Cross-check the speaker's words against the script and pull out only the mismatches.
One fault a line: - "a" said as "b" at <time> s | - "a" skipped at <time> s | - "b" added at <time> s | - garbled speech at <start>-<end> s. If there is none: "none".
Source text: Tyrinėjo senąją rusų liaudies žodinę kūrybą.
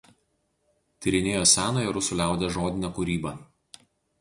none